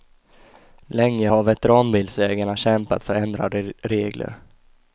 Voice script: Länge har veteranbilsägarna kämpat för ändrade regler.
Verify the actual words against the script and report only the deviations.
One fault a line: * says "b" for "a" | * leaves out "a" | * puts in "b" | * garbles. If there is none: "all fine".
all fine